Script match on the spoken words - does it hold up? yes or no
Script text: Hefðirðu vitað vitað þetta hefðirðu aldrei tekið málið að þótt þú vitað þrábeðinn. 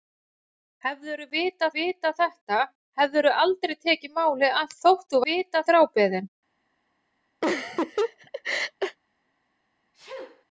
yes